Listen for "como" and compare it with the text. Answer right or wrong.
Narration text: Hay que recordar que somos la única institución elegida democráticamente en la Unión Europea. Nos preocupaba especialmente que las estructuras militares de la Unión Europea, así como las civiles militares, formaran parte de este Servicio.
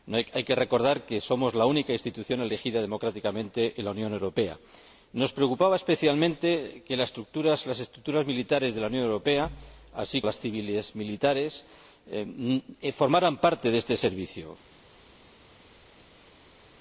wrong